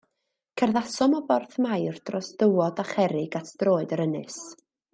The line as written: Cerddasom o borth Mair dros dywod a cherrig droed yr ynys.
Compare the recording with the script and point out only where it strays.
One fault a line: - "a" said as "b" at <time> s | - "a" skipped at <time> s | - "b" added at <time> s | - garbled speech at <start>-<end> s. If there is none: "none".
- "at" added at 3.4 s